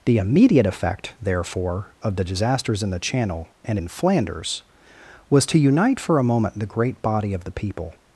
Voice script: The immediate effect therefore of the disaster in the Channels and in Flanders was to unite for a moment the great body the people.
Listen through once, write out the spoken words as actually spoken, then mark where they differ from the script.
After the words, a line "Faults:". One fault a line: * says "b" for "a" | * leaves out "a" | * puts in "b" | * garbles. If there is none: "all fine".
The immediate effect therefore of the disasters in the Channel and in Flanders was to unite for a moment the great body of the people.
Faults:
* says "disasters" for "disaster"
* says "Channel" for "Channels"
* puts in "of"